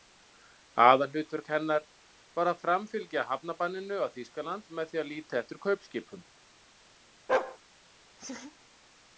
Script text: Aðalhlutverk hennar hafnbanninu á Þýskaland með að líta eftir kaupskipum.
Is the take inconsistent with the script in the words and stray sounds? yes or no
yes